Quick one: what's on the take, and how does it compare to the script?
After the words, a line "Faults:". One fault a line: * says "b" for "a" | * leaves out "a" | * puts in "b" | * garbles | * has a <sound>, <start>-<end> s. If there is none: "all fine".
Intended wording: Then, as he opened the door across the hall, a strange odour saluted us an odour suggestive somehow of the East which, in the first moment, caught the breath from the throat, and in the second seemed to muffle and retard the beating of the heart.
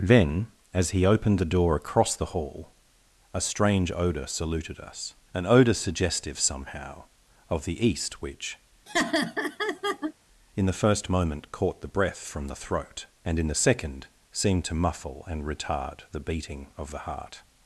Then, as he opened the door across the hall, a strange odour saluted us an odour suggestive somehow of the East which, in the first moment, caught the breath from the throat, and in the second seemed to muffle and retard the beating of the heart.
Faults:
* has a laugh, 8.9-10.1 s